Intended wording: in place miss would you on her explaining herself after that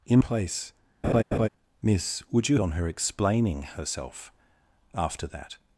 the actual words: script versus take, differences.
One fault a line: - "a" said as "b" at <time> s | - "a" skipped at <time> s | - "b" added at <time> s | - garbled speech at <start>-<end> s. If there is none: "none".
none